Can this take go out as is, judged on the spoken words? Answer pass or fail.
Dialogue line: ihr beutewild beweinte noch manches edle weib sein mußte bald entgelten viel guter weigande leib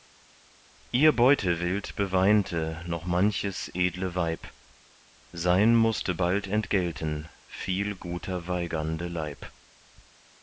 pass